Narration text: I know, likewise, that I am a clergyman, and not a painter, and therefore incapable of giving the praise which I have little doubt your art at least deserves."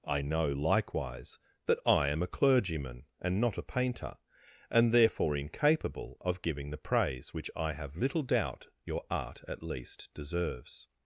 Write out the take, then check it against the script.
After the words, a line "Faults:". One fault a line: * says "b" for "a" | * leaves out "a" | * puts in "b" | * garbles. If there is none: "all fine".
I know, likewise, that I am a clergyman, and not a painter, and therefore incapable of giving the praise which I have little doubt your art at least deserves."
Faults:
all fine